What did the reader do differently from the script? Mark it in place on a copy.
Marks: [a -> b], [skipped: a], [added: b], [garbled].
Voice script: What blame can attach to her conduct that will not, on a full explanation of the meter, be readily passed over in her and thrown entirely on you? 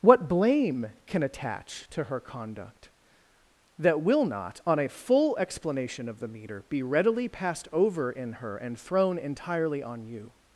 What blame can attach to her conduct that will not, on a full explanation of the meter, be readily passed over in her and thrown entirely on you?